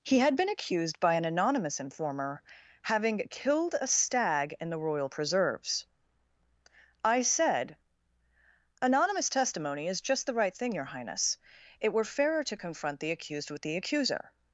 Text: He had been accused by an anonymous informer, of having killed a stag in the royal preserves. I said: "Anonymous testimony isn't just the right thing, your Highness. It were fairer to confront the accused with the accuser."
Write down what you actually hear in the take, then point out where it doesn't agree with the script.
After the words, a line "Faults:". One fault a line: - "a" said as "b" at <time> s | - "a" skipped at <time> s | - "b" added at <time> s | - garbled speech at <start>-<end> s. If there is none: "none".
He had been accused by an anonymous informer, having killed a stag in the royal preserves. I said: "Anonymous testimony is just the right thing, your Highness. It were fairer to confront the accused with the accuser."
Faults:
- "of" skipped at 2.4 s
- "isn't" said as "is" at 9.9 s